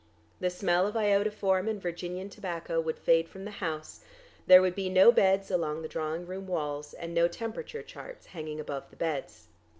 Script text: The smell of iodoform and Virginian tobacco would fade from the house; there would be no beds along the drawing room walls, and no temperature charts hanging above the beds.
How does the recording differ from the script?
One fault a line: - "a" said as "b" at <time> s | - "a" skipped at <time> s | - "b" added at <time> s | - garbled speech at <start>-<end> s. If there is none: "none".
none